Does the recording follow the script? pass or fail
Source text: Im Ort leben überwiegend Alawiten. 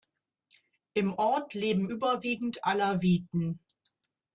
pass